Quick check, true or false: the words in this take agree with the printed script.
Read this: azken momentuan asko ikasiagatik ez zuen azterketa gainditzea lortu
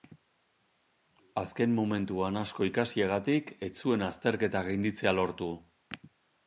true